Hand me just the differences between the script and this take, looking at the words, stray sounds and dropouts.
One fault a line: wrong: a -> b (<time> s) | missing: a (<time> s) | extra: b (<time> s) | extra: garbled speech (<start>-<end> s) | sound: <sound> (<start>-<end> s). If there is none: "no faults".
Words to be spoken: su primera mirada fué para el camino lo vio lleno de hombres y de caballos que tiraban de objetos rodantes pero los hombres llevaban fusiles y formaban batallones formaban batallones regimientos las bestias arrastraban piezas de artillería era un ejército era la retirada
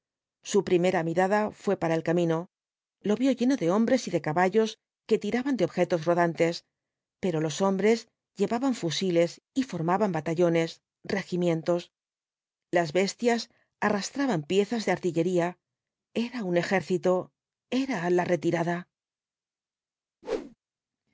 missing: formaban batallones (10.8 s)
sound: whoosh (20.2-20.6 s)